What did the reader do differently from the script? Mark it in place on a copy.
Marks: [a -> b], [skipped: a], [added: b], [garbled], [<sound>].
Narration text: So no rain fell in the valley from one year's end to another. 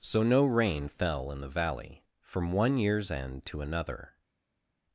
So no rain fell in the valley from one year's end to another.